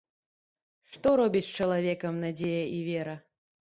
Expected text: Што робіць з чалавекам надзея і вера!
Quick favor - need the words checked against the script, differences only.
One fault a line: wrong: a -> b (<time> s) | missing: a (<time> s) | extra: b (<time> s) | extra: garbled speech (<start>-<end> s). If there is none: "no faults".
no faults